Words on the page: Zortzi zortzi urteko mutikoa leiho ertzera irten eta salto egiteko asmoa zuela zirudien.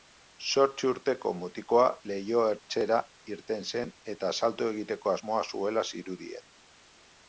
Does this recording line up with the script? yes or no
no